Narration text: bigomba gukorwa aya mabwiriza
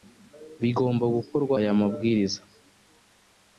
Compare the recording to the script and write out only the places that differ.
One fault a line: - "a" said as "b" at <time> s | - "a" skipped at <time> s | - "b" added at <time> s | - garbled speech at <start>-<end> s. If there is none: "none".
none